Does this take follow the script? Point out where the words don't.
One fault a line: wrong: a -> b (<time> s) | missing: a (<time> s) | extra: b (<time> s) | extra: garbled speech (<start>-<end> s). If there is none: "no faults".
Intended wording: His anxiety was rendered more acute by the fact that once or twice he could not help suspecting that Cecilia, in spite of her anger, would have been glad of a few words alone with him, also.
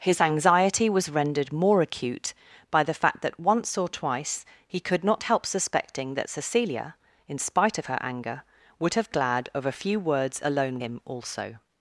missing: been (9.1 s)
missing: with (10.8 s)